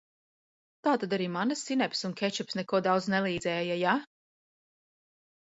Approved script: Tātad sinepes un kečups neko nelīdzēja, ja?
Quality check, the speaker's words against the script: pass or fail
fail